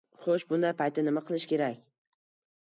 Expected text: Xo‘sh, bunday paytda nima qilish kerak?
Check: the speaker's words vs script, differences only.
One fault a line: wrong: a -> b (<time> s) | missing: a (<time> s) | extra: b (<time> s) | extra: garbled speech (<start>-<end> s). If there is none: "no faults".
no faults